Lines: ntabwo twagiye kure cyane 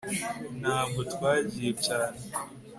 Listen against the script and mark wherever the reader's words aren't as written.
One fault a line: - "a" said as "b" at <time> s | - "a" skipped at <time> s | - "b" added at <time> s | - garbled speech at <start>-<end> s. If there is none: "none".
- "kure" skipped at 1.7 s